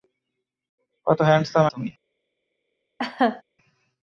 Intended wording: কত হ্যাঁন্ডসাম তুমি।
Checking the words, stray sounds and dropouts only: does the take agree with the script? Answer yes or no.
no